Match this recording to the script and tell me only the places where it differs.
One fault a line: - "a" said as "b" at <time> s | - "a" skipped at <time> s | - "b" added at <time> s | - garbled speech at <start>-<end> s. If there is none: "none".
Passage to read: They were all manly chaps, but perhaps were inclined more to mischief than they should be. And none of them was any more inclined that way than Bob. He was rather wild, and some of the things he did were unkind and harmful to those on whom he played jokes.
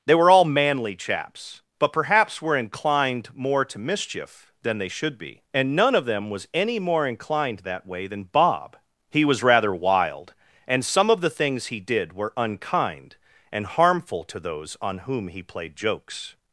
none